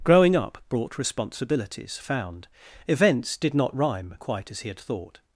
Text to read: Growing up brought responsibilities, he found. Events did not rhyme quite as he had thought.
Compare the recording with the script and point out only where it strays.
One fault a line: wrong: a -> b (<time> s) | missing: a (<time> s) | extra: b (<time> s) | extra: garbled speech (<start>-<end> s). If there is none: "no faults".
missing: he (2.0 s)